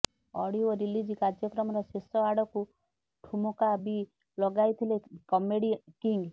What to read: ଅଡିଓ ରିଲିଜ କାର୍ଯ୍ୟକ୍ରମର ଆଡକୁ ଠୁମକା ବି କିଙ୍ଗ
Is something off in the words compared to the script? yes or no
yes